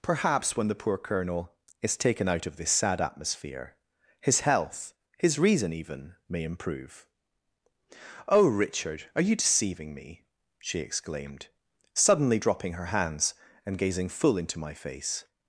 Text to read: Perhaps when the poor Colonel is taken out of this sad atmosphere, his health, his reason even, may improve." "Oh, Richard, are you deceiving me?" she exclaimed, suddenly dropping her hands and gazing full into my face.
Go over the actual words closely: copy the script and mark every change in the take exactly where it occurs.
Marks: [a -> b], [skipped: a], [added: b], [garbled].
Perhaps when the poor Colonel is taken out of this sad atmosphere, his health, his reason even, may improve." "Oh, Richard, are you deceiving me?" she exclaimed, suddenly dropping her hands and gazing full into my face.